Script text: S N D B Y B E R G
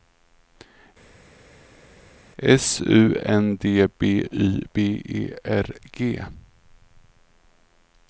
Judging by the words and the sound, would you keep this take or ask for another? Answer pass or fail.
fail